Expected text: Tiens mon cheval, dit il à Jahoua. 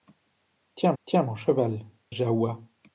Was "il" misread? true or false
true